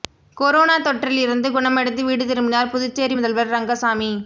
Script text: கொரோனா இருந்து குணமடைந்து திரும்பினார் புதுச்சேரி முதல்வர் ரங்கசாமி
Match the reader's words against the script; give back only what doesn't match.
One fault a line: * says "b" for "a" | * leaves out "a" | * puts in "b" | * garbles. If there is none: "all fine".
* puts in "தொற்றில்"
* puts in "வீடு"